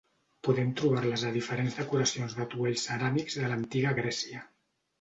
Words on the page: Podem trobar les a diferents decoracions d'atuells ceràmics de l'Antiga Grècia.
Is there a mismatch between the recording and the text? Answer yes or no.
no